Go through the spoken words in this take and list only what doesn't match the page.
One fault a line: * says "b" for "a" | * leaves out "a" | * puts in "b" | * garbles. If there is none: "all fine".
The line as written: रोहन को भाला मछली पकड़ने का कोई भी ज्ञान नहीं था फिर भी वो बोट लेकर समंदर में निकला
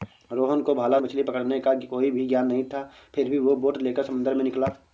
all fine